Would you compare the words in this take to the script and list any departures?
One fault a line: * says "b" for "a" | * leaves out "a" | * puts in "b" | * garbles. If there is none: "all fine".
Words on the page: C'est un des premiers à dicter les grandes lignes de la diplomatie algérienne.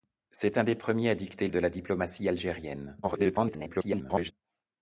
* leaves out "les grandes lignes"
* garbles